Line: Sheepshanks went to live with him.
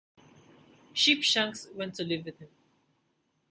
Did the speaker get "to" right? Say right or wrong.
right